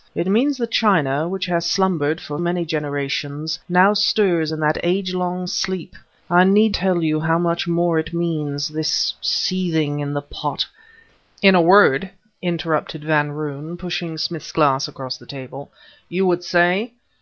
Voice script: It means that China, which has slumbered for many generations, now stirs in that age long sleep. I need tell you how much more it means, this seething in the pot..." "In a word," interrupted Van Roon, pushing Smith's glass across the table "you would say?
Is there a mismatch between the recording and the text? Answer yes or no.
no